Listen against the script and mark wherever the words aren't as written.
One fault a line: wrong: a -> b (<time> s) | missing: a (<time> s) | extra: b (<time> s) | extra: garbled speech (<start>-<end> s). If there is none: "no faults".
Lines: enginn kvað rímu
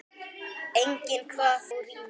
no faults